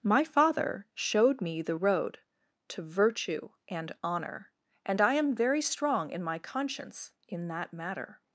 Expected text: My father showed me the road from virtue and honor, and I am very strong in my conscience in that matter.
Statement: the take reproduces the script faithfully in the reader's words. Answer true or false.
false